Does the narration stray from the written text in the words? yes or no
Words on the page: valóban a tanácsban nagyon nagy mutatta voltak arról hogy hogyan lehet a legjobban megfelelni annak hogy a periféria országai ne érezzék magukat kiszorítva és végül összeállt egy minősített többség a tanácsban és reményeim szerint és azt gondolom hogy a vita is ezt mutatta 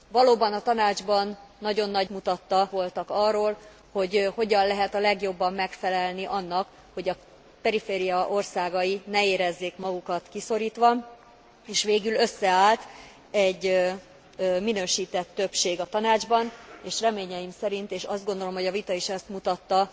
no